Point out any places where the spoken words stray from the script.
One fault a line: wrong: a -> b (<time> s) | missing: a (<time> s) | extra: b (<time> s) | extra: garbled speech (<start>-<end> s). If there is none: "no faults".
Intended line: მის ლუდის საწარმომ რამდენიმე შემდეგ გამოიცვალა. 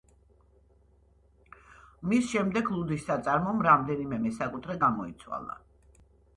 extra: შემდეგ (2.3 s)
wrong: შემდეგ -> მესაკუთრე (4.3 s)